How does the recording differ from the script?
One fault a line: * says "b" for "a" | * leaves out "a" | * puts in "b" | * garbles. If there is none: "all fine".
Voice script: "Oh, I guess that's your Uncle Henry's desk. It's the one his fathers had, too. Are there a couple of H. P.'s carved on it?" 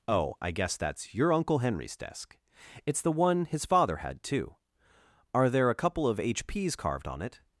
* says "father" for "fathers"